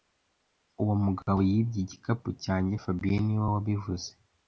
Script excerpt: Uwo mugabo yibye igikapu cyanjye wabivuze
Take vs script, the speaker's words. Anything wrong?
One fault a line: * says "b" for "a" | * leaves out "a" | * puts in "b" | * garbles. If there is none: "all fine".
* puts in "fabien niwe"